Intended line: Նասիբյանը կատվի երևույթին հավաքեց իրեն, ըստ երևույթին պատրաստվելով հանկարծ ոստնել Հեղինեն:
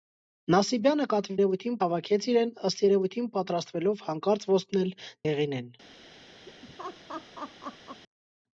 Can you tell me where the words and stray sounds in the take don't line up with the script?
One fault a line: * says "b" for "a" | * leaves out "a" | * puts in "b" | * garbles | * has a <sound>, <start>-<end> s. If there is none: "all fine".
* has a laugh, 6.5-8.0 s